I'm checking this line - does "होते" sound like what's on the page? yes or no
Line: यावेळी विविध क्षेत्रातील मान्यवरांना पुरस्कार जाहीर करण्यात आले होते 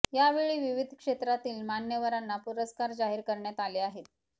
no